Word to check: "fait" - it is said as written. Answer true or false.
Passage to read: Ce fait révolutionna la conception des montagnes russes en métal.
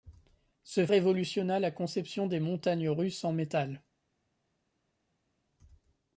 false